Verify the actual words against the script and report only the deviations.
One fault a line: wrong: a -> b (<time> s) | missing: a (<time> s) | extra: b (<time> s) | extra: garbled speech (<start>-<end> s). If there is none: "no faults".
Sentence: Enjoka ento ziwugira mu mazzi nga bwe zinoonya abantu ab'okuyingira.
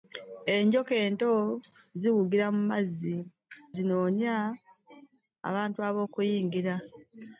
missing: nga bwe (3.1 s)